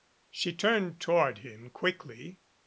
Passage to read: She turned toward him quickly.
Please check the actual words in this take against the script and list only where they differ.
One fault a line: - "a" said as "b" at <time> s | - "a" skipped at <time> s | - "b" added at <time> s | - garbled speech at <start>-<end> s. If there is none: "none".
none